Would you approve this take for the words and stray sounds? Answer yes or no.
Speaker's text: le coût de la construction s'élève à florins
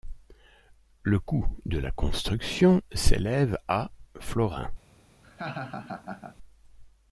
no